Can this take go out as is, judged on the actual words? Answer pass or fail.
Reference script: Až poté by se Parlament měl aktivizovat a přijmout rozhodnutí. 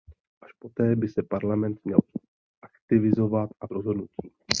fail